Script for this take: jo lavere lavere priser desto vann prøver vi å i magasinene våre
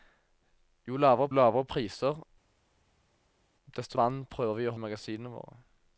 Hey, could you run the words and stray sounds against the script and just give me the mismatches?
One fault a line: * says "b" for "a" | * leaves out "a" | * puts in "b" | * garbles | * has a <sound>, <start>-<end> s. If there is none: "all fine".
all fine